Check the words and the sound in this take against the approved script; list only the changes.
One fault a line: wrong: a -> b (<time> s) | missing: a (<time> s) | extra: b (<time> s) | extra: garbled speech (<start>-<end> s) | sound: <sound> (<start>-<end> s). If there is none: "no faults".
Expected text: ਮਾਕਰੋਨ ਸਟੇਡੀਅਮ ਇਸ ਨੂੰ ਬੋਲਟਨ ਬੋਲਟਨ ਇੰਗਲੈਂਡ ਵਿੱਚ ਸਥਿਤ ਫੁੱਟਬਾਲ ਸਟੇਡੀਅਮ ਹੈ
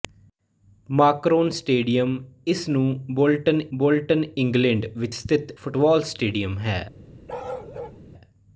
sound: bark (7.3-8.0 s)